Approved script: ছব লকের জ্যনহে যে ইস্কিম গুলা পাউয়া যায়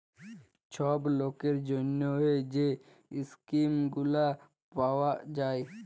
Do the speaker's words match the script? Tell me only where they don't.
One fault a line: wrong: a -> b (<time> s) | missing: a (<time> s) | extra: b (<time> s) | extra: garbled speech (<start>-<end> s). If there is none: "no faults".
no faults